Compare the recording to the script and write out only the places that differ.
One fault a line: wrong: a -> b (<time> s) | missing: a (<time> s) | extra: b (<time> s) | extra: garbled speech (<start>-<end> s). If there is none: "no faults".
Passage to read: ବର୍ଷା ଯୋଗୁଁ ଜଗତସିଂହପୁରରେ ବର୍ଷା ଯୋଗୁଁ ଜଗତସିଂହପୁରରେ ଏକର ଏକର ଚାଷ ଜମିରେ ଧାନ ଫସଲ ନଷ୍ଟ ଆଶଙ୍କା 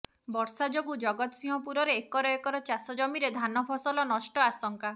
missing: ବର୍ଷା ଯୋଗୁଁ ଜଗତସିଂହପୁରରେ (2.0 s)